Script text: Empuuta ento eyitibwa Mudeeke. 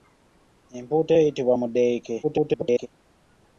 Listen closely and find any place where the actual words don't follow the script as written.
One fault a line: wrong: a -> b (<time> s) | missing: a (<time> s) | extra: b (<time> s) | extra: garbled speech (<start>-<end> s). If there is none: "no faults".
missing: ento (1.1 s)
extra: garbled speech (2.2-2.9 s)